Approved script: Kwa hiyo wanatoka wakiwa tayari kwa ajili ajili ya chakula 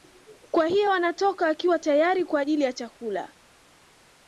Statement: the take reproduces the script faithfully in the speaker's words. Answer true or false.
false